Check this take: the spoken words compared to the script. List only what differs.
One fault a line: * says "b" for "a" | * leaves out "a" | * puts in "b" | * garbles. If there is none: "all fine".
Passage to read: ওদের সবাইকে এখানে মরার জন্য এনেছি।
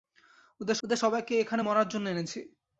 * puts in "ওদের"